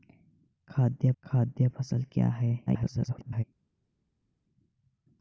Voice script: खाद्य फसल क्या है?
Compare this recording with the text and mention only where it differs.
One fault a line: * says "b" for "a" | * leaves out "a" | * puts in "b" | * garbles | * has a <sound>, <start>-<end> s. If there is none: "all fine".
* puts in "खाद्य"
* garbles